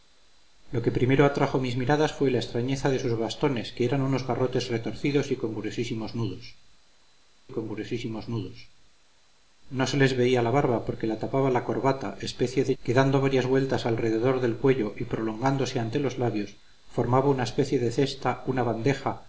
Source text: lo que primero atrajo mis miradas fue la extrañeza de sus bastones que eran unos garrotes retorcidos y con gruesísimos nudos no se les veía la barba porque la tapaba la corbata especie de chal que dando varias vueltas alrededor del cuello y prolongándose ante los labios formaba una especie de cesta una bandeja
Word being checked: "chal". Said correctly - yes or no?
no